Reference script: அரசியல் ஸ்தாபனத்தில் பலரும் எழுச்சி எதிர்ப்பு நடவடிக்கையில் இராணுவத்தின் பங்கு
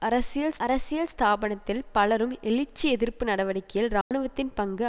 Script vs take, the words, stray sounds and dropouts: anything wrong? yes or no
yes